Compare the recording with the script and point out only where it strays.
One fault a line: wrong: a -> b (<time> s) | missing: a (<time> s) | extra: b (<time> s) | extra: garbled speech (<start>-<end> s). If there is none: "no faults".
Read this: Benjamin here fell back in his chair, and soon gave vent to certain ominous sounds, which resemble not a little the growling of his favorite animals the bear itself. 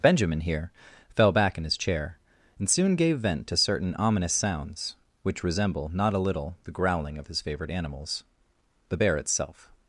no faults